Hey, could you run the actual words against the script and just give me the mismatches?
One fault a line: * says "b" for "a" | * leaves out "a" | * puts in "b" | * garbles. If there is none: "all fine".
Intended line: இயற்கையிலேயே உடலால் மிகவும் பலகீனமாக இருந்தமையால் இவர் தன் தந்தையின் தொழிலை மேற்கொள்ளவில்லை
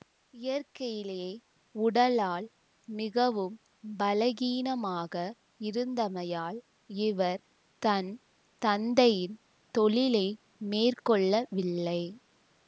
all fine